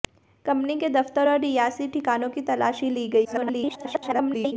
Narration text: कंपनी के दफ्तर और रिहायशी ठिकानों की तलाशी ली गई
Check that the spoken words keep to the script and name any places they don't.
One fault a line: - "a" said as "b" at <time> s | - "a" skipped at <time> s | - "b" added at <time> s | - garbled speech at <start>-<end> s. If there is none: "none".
- garbled speech at 3.2-4.5 s